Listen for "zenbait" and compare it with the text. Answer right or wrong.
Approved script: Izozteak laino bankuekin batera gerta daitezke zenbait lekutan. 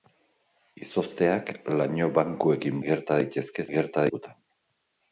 wrong